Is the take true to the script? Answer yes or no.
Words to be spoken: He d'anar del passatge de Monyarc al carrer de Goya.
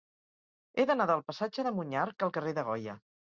yes